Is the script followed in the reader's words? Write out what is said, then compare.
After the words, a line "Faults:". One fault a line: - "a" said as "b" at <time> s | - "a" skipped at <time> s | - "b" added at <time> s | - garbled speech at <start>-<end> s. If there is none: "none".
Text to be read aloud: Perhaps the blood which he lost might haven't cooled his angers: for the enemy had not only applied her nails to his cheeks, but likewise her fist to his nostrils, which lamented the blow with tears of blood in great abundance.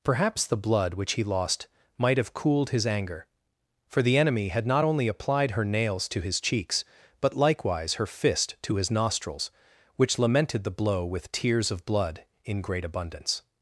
Perhaps the blood which he lost might have cooled his anger: for the enemy had not only applied her nails to his cheeks, but likewise her fist to his nostrils, which lamented the blow with tears of blood in great abundance.
Faults:
- "haven't" said as "have" at 2.2 s
- "angers" said as "anger" at 2.9 s